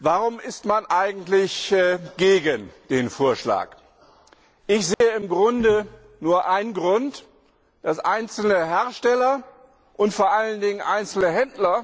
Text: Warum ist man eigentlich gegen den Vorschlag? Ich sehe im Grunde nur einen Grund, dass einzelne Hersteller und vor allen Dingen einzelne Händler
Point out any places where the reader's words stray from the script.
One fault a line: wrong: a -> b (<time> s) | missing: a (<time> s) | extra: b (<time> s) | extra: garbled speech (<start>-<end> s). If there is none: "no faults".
no faults